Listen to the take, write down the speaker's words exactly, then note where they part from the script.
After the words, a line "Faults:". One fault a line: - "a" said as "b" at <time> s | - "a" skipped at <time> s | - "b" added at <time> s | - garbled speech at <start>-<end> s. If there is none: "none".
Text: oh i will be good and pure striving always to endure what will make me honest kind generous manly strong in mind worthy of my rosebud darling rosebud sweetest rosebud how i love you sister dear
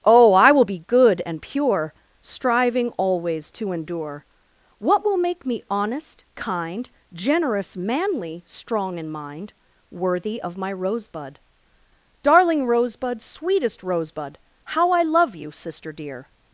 oh i will be good and pure striving always to endure what will make me honest kind generous manly strong in mind worthy of my rosebud darling rosebud sweetest rosebud how i love you sister dear
Faults:
none